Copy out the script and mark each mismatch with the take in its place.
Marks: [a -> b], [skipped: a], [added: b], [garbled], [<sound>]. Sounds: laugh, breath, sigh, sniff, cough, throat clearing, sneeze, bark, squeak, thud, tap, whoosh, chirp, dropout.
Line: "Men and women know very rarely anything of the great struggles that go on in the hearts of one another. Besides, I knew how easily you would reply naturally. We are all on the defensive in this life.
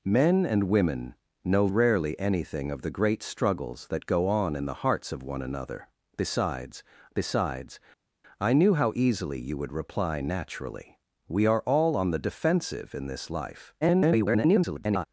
"Men and women know [skipped: very] rarely anything of the great struggles that go on in the hearts of one another. Besides, [added: besides] I knew how easily you would reply naturally. We are all on the defensive in this life. [garbled]